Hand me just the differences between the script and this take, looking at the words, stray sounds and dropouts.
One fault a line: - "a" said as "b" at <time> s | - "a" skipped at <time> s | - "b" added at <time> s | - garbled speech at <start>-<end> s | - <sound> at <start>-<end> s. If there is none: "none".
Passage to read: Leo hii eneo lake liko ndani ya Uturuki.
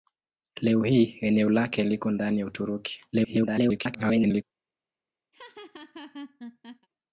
- garbled speech at 3.1-4.4 s
- laugh at 5.3-6.9 s